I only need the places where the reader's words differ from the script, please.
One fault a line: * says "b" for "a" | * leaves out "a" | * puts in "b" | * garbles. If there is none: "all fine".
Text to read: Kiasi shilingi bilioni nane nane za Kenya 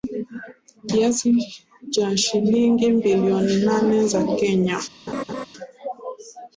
* puts in "cha"
* leaves out "nane"